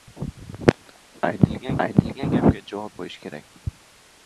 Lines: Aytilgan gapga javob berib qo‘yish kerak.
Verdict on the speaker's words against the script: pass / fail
fail